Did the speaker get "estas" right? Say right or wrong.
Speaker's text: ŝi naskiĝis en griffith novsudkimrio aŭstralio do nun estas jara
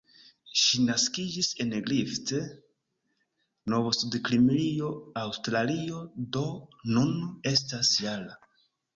right